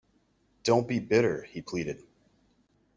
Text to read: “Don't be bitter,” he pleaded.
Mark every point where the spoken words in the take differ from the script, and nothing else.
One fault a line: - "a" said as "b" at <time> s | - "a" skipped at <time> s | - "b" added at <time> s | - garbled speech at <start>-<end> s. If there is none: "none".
none